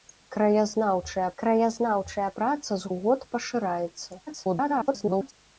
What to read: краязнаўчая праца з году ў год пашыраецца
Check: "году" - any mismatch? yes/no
yes